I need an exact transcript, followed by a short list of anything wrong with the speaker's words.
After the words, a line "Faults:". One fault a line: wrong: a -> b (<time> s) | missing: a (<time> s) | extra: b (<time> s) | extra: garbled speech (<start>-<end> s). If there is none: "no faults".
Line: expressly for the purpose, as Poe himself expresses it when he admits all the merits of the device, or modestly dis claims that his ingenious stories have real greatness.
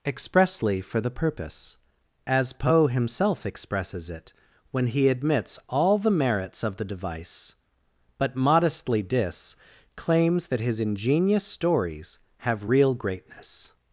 expressly for the purpose, as Poe himself expresses it when he admits all the merits of the device, but modestly dis claims that his ingenious stories have real greatness.
Faults:
wrong: or -> but (8.2 s)